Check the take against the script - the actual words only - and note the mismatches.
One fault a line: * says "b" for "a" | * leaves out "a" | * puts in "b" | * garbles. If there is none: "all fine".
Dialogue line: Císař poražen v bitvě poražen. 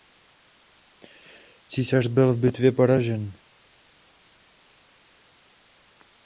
* says "byl" for "poražen"